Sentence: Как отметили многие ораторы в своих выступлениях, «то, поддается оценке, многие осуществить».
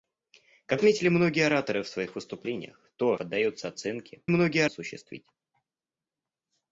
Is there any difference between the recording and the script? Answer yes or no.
no